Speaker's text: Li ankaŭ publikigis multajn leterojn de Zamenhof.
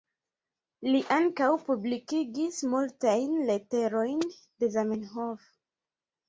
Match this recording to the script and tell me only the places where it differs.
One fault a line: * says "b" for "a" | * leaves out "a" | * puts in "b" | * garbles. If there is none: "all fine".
all fine